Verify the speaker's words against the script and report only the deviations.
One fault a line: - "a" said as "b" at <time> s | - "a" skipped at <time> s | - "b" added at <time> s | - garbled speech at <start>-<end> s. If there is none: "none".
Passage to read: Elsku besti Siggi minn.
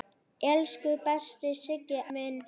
none